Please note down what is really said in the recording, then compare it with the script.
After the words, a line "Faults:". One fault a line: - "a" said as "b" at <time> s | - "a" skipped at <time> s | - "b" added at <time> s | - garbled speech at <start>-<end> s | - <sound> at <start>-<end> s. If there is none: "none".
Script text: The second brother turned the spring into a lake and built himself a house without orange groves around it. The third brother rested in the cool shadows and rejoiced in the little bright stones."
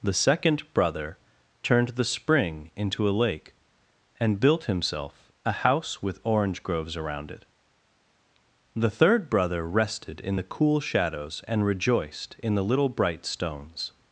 The second brother turned the spring into a lake and built himself a house with orange groves around it. The third brother rested in the cool shadows and rejoiced in the little bright stones."
Faults:
- "without" said as "with" at 6.0 s